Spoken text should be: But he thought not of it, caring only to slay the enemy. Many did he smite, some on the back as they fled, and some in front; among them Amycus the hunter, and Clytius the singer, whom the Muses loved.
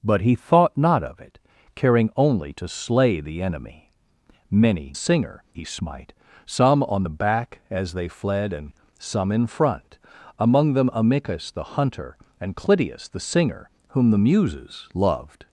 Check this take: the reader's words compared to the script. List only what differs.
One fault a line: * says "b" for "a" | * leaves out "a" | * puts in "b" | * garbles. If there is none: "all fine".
* says "singer" for "did"